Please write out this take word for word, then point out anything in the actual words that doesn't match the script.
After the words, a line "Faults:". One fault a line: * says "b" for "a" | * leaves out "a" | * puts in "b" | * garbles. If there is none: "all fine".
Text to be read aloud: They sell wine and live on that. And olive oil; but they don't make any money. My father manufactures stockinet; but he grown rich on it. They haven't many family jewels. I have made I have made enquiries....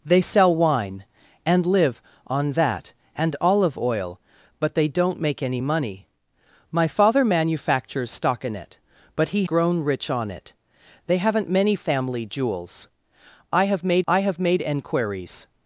They sell wine and live on that. And olive oil; but they don't make any money. My father manufactures stockinet; but he grown rich on it. They haven't many family jewels. I have made I have made enquiries....
Faults:
all fine